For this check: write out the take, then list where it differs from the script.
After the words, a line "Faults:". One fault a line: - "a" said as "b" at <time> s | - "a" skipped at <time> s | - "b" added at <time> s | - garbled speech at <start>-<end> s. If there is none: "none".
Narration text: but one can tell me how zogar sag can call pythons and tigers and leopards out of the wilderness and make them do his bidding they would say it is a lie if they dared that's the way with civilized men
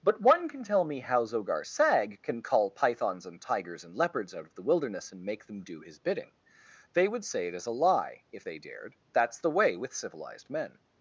but one can tell me how zogar sag can call pythons and tigers and leopards out of the wilderness and make them do his bidding they would say it is a lie if they dared that's the way with civilized men
Faults:
none